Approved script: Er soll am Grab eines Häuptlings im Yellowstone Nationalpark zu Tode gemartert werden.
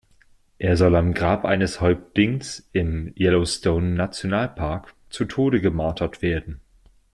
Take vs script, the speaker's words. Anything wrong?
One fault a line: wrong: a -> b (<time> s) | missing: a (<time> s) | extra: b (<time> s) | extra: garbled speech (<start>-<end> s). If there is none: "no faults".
no faults